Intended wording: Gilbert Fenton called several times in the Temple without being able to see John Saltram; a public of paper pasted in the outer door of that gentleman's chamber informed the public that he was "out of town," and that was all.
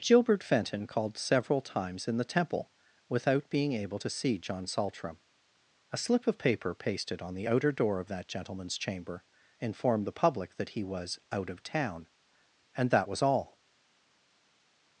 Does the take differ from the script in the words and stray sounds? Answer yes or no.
yes